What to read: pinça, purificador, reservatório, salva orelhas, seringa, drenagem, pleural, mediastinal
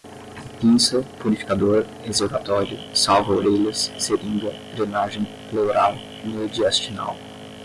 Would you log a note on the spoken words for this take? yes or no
no